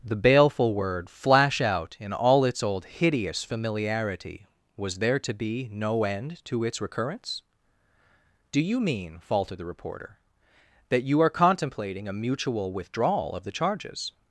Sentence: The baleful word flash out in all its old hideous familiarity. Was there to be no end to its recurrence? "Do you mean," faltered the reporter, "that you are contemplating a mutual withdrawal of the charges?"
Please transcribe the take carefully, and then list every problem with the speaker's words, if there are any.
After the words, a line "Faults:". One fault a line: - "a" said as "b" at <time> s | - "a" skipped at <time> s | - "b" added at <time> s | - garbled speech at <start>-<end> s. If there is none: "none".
The baleful word flash out in all its old hideous familiarity. Was there to be no end to its recurrence? "Do you mean," faltered the reporter, "that you are contemplating a mutual withdrawal of the charges?"
Faults:
none